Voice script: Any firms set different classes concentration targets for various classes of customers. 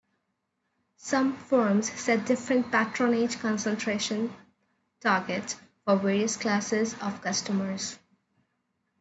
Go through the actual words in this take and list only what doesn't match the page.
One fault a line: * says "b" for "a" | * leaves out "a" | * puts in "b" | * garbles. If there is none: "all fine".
* says "Some" for "Any"
* says "patronage" for "classes"